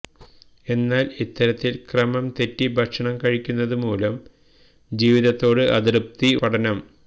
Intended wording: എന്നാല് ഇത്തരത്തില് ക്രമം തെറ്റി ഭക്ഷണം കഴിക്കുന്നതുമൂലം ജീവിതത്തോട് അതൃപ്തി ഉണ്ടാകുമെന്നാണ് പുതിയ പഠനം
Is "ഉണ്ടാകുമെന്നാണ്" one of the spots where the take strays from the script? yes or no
yes